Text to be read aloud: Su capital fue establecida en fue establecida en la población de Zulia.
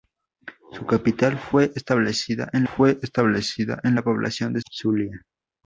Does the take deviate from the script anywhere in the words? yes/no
no